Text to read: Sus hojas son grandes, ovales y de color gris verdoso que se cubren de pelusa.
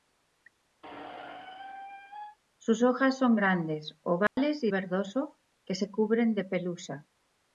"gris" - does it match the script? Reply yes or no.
no